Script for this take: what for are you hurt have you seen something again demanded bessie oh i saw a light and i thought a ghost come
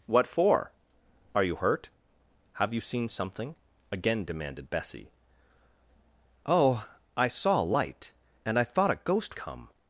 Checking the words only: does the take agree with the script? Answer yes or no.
yes